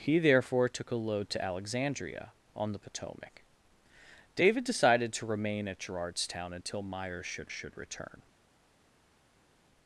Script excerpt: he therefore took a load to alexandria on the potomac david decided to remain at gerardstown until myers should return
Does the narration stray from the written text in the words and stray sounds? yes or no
yes